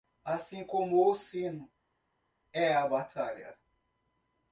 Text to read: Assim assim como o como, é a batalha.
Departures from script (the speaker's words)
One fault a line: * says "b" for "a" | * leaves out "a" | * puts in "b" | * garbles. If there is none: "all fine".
* leaves out "assim"
* says "sino" for "como"